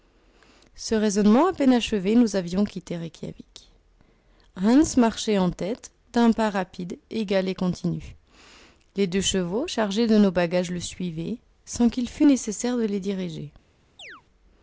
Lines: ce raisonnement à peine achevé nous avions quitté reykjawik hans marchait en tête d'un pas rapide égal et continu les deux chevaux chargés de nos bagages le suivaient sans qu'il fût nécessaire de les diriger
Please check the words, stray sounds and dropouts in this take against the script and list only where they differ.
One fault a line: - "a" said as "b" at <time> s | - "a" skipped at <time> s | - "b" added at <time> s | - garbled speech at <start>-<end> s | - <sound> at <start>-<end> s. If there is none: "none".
- chirp at 14.0-14.2 s